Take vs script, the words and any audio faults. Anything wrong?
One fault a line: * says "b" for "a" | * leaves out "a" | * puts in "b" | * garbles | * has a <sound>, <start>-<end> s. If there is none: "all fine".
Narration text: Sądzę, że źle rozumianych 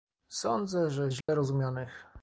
* has a dropout, 1.2-1.3 s